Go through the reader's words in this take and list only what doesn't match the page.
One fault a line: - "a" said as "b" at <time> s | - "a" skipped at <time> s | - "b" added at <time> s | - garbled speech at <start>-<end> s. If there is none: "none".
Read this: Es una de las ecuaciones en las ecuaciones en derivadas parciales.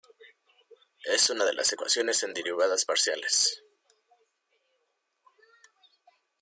- "las ecuaciones en" skipped at 2.3 s